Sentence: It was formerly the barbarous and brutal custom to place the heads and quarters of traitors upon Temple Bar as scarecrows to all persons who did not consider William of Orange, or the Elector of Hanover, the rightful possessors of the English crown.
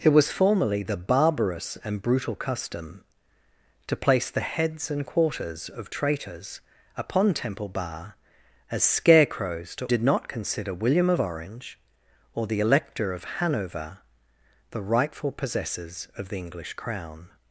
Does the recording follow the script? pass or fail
fail